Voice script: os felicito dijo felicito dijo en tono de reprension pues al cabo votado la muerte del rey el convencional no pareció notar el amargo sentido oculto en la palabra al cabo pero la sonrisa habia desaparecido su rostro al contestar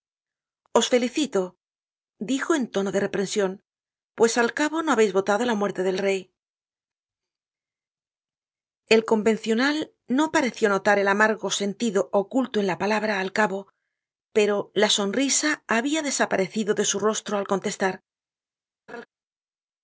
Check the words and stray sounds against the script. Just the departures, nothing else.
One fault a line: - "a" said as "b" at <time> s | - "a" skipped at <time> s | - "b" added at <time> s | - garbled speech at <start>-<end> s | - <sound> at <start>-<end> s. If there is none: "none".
- "felicito dijo" skipped at 2.5 s
- "no habeis" added at 4.8 s
- "de" added at 16.7 s
- laugh at 18.9-19.1 s